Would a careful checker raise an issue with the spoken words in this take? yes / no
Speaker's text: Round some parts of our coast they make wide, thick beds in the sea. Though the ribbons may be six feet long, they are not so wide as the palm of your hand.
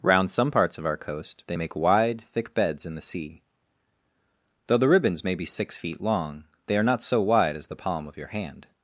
no